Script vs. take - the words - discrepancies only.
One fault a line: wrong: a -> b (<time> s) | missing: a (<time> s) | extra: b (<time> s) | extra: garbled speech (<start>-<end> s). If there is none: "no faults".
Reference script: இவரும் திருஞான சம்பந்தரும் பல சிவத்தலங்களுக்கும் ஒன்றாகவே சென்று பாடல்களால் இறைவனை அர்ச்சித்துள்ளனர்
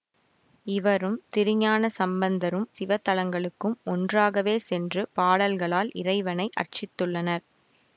missing: பல (2.6 s)